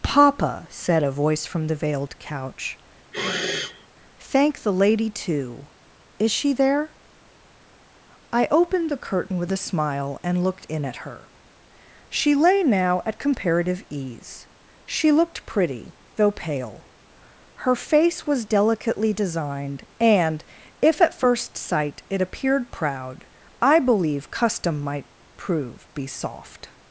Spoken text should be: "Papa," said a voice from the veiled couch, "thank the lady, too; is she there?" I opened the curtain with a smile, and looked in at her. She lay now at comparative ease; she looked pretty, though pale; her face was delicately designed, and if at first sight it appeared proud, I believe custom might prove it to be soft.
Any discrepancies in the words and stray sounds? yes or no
yes